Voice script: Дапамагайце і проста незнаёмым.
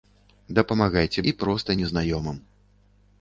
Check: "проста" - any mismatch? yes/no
no